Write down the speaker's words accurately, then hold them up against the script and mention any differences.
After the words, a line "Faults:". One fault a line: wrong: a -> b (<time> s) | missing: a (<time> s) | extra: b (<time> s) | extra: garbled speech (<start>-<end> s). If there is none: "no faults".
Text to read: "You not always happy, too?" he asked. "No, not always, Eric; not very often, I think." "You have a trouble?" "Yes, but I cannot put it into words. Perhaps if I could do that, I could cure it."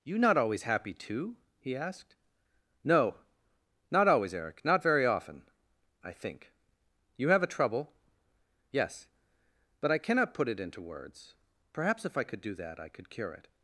"You not always happy, too?" he asked. "No, not always, Eric; not very often, I think." "You have a trouble?" "Yes, but I cannot put it into words. Perhaps if I could do that, I could cure it."
Faults:
no faults